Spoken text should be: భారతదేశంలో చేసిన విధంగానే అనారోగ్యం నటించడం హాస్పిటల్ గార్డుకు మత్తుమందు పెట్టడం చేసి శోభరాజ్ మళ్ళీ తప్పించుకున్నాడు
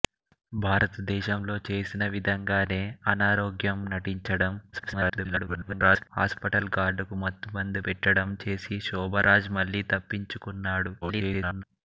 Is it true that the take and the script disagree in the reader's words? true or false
true